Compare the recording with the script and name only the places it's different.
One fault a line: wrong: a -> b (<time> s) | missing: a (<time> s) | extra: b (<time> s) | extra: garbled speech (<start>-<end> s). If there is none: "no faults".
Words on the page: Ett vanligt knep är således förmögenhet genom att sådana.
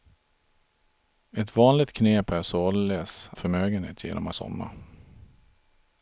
no faults